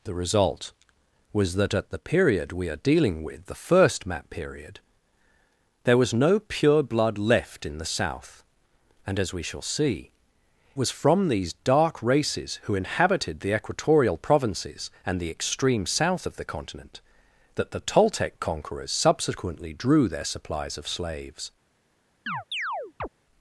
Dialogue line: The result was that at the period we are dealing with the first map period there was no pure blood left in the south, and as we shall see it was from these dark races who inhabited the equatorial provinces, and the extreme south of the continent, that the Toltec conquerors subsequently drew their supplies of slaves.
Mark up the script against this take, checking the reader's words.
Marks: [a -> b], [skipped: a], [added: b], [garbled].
The result was that at the period we are dealing with the first map period there was no pure blood left in the south, and as we shall see [skipped: it] was from these dark races who inhabited the equatorial provinces, and the extreme south of the continent, that the Toltec conquerors subsequently drew their supplies of slaves.